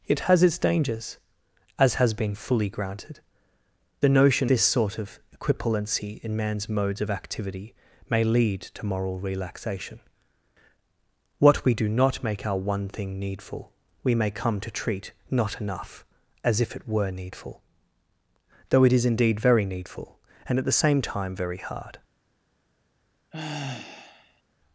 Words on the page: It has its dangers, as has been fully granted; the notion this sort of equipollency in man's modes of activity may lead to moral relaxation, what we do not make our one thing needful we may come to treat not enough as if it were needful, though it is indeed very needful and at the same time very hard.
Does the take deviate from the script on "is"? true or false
false